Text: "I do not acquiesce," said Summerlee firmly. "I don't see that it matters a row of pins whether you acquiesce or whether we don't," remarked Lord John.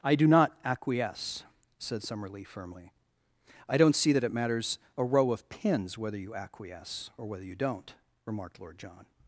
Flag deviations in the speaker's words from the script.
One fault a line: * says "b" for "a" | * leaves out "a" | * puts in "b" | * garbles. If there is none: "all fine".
* says "you" for "we"